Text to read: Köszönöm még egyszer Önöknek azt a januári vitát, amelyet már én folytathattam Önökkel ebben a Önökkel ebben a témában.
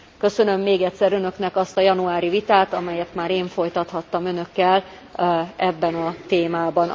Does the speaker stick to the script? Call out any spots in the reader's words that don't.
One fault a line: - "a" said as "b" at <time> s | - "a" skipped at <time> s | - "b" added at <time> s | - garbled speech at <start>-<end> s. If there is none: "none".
- "Önökkel ebben a" skipped at 6.1 s